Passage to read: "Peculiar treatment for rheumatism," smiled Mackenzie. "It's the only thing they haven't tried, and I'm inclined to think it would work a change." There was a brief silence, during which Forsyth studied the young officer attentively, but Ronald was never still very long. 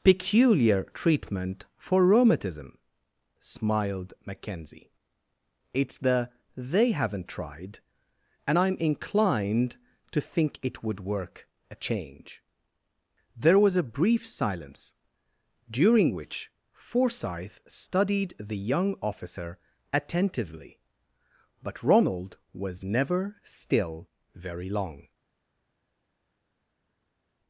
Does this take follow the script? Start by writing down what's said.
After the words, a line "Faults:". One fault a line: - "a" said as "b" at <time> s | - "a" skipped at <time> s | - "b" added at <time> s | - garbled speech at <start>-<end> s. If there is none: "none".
"Peculiar treatment for rheumatism," smiled Mackenzie. "It's the they haven't tried, and I'm inclined to think it would work a change." There was a brief silence, during which Forsyth studied the young officer attentively, but Ronald was never still very long.
Faults:
- "only thing" skipped at 6.3 s